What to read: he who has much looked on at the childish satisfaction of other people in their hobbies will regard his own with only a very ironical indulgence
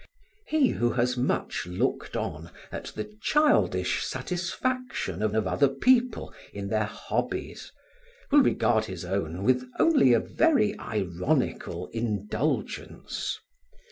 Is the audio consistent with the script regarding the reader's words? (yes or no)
no